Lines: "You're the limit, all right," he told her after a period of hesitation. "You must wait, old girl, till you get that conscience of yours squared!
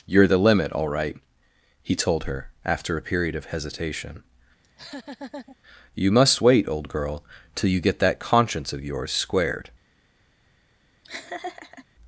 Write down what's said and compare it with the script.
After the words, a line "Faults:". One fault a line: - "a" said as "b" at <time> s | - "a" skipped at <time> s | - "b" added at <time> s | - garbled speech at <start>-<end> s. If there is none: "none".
"You're the limit, all right," he told her after a period of hesitation. "You must wait, old girl, till you get that conscience of yours squared!
Faults:
none